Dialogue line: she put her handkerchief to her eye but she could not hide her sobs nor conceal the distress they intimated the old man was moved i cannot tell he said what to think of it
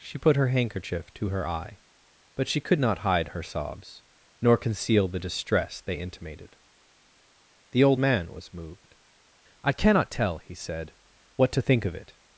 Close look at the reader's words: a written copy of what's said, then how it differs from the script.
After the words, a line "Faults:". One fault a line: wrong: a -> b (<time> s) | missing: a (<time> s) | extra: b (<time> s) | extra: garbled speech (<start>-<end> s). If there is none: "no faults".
she put her handkerchief to her eye but she could not hide her sobs nor conceal the distress they intimated the old man was moved i cannot tell he said what to think of it
Faults:
no faults